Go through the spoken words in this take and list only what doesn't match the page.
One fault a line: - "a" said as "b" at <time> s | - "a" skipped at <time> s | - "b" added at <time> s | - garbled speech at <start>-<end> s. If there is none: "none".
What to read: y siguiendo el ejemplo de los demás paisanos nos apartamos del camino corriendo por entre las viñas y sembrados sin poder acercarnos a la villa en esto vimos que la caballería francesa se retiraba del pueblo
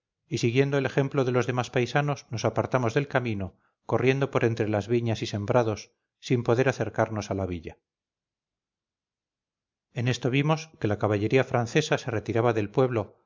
none